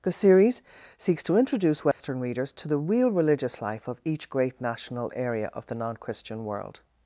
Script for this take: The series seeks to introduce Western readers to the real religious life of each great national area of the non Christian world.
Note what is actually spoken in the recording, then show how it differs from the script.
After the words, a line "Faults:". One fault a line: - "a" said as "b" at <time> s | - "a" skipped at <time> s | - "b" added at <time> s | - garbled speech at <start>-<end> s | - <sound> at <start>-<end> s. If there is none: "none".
The series seeks to introduce Western readers to the real religious life of each great national area of the non Christian world.
Faults:
- dropout at 1.9-2.0 s